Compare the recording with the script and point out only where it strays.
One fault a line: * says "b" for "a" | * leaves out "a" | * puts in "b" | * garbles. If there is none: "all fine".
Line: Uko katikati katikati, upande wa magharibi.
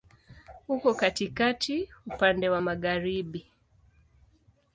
* leaves out "katikati"